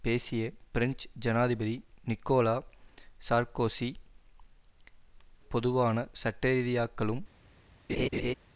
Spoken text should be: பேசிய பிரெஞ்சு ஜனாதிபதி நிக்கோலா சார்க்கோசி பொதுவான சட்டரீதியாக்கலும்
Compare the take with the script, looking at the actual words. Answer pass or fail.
pass